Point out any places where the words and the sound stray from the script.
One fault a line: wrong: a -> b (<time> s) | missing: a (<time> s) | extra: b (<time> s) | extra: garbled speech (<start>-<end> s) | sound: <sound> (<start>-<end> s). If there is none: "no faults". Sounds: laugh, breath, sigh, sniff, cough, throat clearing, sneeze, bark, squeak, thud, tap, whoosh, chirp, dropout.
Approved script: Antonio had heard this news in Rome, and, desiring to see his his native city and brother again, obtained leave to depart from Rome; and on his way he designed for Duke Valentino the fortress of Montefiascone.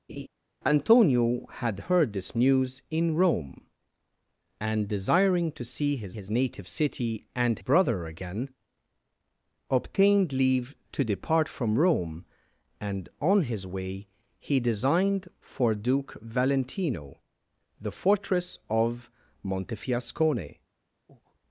sound: laugh (0.1-0.3 s)
sound: breath (21.1-21.4 s)